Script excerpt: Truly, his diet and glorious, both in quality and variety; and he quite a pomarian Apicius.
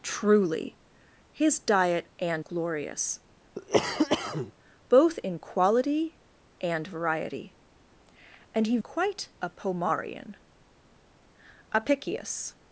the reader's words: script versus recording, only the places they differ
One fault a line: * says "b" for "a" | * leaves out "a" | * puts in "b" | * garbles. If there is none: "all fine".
all fine